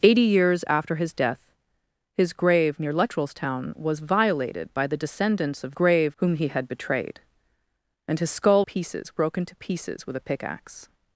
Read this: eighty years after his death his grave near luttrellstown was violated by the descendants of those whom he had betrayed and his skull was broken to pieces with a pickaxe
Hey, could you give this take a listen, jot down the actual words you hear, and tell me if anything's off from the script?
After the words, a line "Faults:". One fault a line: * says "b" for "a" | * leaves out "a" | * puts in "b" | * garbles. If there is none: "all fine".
eighty years after his death his grave near luttrellstown was violated by the descendants of grave whom he had betrayed and his skull pieces broken to pieces with a pickaxe
Faults:
* says "grave" for "those"
* says "pieces" for "was"